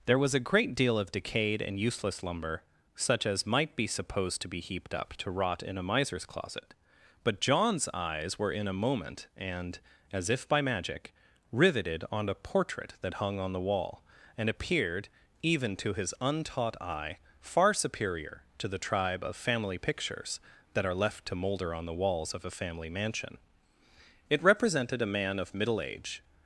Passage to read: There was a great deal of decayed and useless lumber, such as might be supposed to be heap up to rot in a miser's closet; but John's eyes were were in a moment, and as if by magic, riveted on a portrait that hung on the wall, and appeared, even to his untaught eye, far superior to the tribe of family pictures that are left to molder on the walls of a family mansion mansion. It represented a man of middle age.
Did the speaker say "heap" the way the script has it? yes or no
no